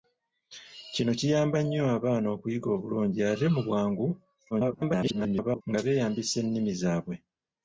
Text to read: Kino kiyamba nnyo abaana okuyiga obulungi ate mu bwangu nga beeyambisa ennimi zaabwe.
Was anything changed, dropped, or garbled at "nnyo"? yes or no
no